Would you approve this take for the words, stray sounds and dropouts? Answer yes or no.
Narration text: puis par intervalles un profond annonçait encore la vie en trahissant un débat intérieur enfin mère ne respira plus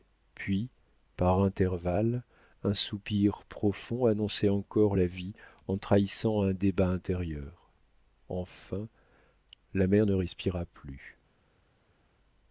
no